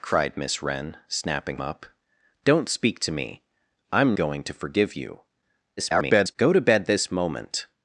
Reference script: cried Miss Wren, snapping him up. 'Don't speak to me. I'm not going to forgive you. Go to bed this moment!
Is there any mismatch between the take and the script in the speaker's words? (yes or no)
yes